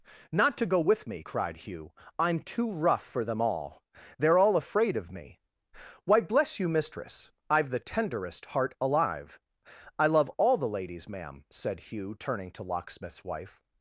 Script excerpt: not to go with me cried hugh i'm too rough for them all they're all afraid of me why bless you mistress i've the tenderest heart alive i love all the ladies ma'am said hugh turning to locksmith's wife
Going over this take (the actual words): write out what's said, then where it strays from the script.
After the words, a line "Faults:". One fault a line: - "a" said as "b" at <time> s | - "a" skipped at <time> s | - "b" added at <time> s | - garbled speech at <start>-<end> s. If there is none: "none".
not to go with me cried hugh i'm too rough for them all they're all afraid of me why bless you mistress i've the tenderest heart alive i love all the ladies ma'am said hugh turning to locksmith's wife
Faults:
none